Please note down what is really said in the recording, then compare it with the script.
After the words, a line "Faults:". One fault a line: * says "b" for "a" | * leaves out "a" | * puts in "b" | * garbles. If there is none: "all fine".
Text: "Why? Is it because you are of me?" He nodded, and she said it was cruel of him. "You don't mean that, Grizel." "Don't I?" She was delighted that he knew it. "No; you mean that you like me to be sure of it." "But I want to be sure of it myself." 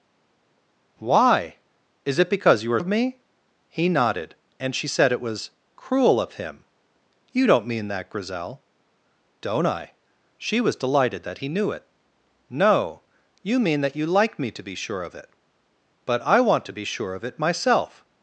"Why? Is it because you are of me?" He nodded, and she said it was cruel of him. "You don't mean that, Grizel." "Don't I?" She was delighted that he knew it. "No; you mean that you like me to be sure of it." "But I want to be sure of it myself."
Faults:
all fine